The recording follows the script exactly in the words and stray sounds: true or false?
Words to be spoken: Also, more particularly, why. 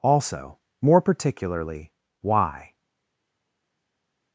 true